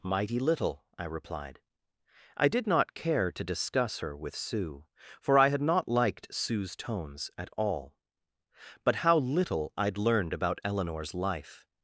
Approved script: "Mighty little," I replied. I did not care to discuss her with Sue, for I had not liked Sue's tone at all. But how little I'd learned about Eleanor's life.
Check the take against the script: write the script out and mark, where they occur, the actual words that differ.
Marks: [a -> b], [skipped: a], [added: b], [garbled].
"Mighty little," I replied. I did not care to discuss her with Sue, for I had not liked Sue's [tone -> tones] at all. But how little I'd learned about Eleanor's life.